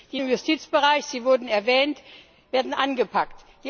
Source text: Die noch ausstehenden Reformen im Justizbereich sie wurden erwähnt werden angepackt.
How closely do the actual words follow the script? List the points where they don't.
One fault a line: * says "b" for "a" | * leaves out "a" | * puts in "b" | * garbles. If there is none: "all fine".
* leaves out "noch ausstehenden Reformen"